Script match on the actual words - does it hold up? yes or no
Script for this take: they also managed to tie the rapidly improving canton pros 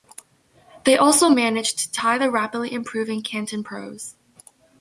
yes